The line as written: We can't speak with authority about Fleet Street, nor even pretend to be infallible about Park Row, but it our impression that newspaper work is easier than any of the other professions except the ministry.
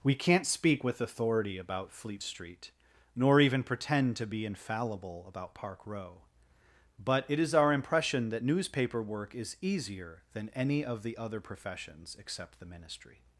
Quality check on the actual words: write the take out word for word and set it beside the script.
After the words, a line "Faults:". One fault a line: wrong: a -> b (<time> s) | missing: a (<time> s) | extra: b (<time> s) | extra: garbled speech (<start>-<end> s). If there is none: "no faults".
We can't speak with authority about Fleet Street, nor even pretend to be infallible about Park Row, but it is our impression that newspaper work is easier than any of the other professions except the ministry.
Faults:
extra: is (7.4 s)